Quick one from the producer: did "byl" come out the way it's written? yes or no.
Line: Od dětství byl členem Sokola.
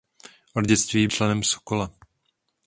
no